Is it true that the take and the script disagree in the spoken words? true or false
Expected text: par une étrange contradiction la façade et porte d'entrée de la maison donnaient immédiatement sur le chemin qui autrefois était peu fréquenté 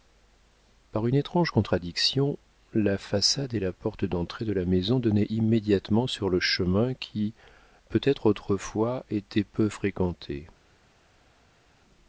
true